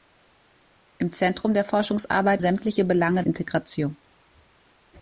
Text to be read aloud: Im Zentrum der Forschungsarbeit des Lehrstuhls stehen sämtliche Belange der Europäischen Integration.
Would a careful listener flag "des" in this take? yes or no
yes